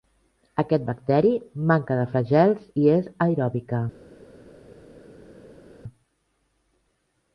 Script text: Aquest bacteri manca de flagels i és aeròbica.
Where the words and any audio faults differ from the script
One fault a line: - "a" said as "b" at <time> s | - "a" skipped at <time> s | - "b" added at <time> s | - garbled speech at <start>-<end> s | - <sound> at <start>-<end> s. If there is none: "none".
none